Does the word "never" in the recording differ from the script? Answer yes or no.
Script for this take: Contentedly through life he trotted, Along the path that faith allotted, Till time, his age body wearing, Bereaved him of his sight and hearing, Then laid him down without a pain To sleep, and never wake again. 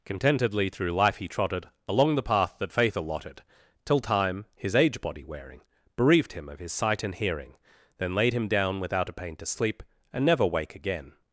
no